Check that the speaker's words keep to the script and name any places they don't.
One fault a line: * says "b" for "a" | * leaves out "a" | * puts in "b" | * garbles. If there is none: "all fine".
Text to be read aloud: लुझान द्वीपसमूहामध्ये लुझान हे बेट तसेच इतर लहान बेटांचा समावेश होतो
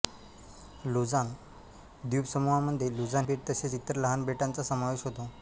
* leaves out "हे"